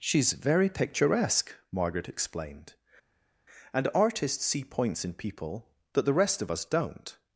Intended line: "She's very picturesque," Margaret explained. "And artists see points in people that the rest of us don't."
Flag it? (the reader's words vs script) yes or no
no